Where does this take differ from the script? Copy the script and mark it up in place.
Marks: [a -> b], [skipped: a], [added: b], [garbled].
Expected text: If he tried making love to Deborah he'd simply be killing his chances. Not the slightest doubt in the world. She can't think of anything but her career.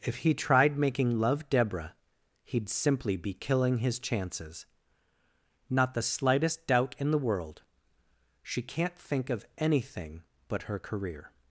If he tried making love [skipped: to] Deborah he'd simply be killing his chances. Not the slightest doubt in the world. She can't think of anything but her career.